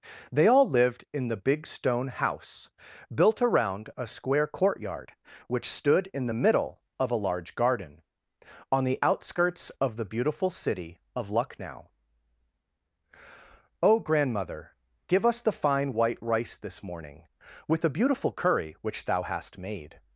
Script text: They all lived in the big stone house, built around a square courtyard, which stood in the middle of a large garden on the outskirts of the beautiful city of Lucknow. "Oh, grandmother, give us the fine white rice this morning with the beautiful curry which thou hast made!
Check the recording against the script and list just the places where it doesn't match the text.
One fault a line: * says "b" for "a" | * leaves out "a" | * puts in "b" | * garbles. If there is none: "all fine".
all fine